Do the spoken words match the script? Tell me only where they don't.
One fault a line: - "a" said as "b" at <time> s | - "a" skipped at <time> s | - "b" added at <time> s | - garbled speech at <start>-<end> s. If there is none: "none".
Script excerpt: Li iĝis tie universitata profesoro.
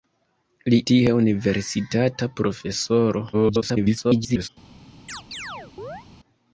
- "iĝis" skipped at 0.8 s
- garbled speech at 3.3-4.5 s